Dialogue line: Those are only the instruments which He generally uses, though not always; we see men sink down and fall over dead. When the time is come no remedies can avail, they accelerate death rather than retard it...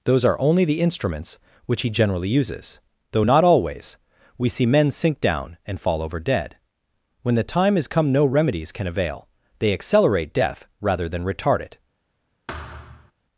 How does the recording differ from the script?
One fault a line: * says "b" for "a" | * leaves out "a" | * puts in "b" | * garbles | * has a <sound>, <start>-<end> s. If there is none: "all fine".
* has a thud, 12.5-13.1 s